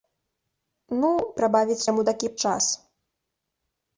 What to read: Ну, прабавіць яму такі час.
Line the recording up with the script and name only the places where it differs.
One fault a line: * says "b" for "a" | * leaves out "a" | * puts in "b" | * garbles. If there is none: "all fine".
all fine